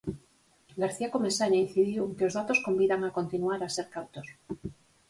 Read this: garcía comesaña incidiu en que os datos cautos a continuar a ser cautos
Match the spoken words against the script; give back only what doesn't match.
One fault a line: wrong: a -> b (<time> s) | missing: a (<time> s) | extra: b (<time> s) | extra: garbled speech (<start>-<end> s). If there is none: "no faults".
wrong: cautos -> convidan (2.7 s)